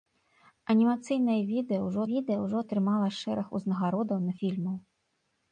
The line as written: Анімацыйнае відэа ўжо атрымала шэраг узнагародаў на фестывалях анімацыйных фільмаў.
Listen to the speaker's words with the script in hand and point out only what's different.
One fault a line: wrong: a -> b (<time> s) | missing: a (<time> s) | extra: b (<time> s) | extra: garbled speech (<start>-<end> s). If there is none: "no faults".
extra: відэа ўжо (2.1 s)
missing: фестывалях анімацыйных (4.3 s)